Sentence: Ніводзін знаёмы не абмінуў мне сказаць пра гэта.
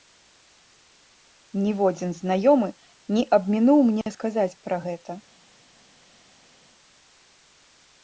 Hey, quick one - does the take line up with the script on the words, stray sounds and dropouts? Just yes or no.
yes